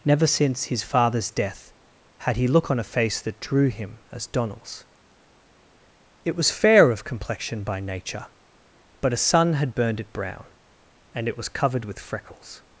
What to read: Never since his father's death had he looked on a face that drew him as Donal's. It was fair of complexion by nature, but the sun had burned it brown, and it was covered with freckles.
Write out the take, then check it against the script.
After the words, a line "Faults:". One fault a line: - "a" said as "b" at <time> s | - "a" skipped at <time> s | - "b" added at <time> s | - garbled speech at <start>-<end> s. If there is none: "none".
Never since his father's death had he look on a face that drew him as Donal's. It was fair of complexion by nature, but a sun had burned it brown, and it was covered with freckles.
Faults:
- "looked" said as "look" at 2.5 s
- "the" said as "a" at 9.1 s